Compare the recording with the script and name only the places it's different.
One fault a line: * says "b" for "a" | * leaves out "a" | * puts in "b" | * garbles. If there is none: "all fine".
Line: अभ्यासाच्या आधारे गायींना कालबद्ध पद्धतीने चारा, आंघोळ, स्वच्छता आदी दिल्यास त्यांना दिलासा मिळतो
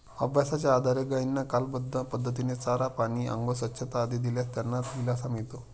* puts in "पाणी"